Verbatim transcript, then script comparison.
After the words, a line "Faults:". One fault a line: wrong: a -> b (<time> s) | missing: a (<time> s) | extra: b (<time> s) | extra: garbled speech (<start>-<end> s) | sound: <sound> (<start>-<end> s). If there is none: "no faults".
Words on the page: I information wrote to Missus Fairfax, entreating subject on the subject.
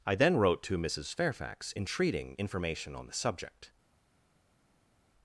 I then wrote to Missus Fairfax, entreating information on the subject.
Faults:
wrong: information -> then (0.1 s)
wrong: subject -> information (2.4 s)